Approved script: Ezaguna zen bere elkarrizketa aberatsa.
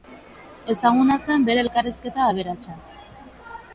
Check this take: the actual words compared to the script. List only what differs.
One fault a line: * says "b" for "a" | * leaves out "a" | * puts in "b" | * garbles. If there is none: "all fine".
all fine